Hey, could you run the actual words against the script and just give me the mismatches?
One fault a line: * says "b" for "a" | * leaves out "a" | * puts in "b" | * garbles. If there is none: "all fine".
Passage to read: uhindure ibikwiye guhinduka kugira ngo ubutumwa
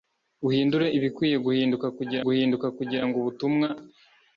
* puts in "guhinduka kugira"